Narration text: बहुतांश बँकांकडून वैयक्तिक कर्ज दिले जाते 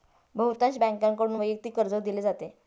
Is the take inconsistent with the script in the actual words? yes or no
no